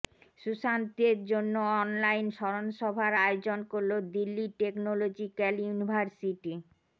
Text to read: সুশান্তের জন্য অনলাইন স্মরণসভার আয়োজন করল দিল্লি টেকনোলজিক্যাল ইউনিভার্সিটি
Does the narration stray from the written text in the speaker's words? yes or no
no